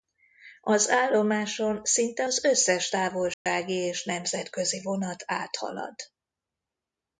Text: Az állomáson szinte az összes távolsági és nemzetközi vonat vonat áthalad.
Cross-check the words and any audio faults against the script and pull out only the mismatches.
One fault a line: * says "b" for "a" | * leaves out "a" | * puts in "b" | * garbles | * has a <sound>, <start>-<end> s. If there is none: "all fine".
* has a dropout, 3.3-3.5 s
* leaves out "vonat"